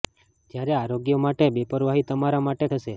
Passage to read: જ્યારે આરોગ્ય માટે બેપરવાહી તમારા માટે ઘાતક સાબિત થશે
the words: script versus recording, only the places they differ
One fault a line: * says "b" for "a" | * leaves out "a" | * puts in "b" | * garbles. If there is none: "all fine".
* leaves out "ઘાતક સાબિત"